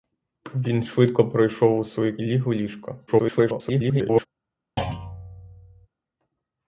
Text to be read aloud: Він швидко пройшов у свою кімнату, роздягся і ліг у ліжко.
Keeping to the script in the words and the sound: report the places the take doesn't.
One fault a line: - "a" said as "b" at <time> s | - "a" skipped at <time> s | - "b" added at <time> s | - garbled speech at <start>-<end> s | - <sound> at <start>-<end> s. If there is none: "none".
- "кімнату роздягся і" skipped at 2.2 s
- garbled speech at 3.1-4.3 s
- thud at 4.8-5.9 s